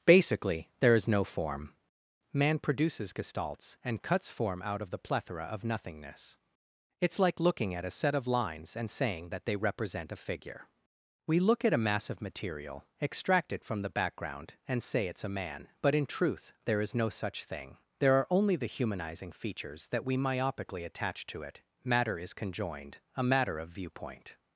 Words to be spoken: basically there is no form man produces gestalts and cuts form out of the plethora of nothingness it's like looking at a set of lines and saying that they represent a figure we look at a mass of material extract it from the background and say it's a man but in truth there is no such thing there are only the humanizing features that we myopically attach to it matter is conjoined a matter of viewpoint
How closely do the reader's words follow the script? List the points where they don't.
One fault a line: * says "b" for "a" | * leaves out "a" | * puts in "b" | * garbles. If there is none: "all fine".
all fine